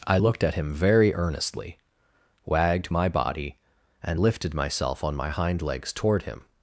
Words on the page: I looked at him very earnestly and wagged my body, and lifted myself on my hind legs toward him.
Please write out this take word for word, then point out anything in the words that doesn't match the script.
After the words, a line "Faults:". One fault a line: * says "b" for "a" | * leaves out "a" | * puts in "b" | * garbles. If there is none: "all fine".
I looked at him very earnestly wagged my body, and lifted myself on my hind legs toward him.
Faults:
* leaves out "and"